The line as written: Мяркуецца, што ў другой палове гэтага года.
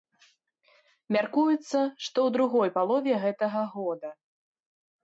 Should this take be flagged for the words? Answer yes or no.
no